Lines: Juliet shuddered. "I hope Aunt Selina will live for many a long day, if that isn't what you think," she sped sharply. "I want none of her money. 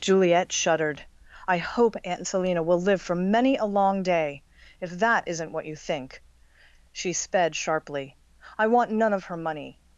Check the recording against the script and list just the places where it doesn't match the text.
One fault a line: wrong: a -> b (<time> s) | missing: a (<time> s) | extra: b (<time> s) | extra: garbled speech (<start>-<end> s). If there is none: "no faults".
no faults